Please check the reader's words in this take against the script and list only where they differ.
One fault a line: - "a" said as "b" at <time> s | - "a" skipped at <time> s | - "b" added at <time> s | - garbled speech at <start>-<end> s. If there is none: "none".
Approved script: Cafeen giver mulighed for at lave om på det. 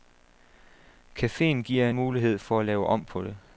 none